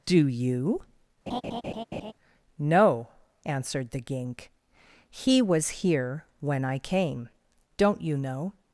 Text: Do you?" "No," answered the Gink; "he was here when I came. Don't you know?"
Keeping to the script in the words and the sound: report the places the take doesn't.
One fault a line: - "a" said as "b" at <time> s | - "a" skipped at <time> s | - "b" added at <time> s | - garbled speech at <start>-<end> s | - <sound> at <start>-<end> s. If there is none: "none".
- laugh at 1.3-2.1 s